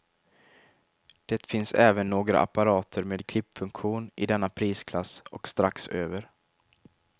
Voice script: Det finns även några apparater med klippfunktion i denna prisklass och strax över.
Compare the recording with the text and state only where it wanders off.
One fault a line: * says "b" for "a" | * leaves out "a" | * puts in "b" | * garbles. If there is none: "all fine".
all fine